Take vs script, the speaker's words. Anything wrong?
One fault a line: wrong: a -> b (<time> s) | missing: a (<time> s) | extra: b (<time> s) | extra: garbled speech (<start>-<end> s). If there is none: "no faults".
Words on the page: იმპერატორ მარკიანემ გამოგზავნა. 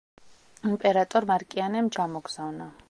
no faults